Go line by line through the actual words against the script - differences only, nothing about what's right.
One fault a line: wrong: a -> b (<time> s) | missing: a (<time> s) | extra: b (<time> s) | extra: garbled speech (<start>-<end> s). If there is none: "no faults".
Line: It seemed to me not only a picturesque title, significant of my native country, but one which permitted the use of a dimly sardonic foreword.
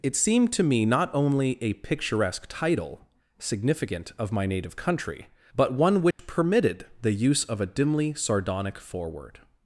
no faults